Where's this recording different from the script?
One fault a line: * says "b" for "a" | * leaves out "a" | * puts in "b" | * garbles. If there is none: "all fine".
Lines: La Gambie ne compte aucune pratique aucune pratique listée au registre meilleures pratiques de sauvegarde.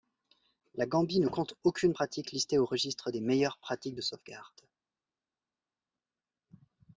* leaves out "aucune pratique"
* puts in "des"